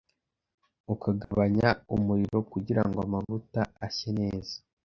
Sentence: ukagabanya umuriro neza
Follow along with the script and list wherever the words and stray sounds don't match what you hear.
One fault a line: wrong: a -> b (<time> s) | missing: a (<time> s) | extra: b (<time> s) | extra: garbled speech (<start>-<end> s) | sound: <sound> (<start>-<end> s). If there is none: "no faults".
sound: dropout (1.2-1.3 s)
extra: kugirango amavuta ashye (2.5 s)